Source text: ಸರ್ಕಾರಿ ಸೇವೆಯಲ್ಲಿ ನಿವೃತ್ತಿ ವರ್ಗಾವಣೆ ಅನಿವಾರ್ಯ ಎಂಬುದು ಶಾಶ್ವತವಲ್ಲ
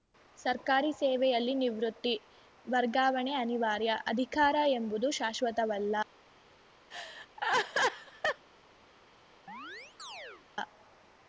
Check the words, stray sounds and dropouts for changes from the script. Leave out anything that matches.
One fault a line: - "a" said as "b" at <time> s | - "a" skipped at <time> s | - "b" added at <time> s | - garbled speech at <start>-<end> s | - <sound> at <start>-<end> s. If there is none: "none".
- "ಅಧಿಕಾರ" added at 4.1 s
- laugh at 6.9-8.5 s
- chirp at 9.5-10.5 s